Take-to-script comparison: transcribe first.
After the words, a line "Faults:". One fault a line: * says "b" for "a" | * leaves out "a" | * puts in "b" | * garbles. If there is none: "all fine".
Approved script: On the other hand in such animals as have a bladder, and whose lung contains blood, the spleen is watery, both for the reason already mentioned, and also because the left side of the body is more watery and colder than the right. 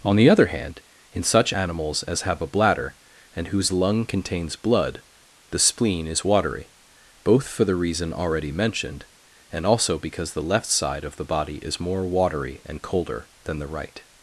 On the other hand in such animals as have a bladder, and whose lung contains blood, the spleen is watery, both for the reason already mentioned, and also because the left side of the body is more watery and colder than the right.
Faults:
all fine